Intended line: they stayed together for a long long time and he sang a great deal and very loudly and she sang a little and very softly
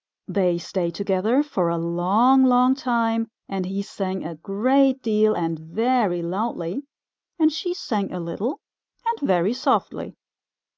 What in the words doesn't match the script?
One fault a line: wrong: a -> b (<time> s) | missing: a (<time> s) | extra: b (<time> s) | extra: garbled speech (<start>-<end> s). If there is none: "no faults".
no faults